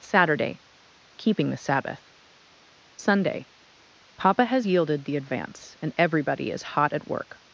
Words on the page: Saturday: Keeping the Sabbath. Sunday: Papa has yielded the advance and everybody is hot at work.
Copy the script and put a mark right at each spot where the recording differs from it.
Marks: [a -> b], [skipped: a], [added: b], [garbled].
Saturday: Keeping the Sabbath. Sunday: Papa has yielded the advance and everybody is hot at work.